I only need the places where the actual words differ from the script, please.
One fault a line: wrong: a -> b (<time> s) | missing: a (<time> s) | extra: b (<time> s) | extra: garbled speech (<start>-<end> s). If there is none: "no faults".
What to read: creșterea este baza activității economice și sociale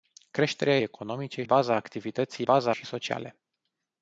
wrong: este -> economice (0.8 s)
wrong: economice -> baza (2.4 s)